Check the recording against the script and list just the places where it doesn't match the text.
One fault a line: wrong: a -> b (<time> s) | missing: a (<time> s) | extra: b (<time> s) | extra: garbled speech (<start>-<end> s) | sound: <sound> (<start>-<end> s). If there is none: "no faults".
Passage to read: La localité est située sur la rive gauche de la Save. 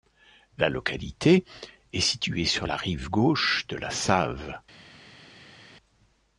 no faults